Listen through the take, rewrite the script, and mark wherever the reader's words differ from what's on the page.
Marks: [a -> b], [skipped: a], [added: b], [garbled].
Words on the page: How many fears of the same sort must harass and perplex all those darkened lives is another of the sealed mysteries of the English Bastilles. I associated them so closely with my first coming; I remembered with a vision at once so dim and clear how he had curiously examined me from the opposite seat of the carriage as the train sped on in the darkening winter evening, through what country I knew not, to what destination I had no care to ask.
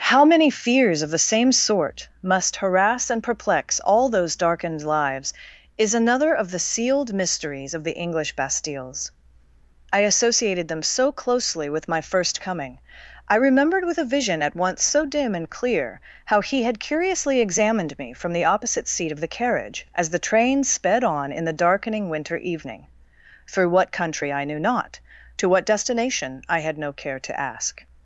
How many fears of the same sort must harass and perplex all those darkened lives is another of the sealed mysteries of the English Bastilles. I associated them so closely with my first coming; I remembered with a vision at once so dim and clear how he had curiously examined me from the opposite seat of the carriage as the train sped on in the darkening winter evening, through what country I knew not, to what destination I had no care to ask.